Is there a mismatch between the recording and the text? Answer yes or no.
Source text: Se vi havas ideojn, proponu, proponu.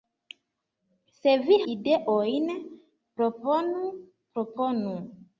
yes